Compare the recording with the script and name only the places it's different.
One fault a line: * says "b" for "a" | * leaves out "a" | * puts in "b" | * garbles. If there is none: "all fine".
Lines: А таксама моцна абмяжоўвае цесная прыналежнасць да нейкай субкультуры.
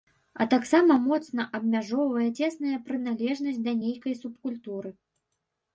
all fine